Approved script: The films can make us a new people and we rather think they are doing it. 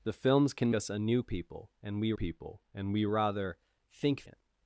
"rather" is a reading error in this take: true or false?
true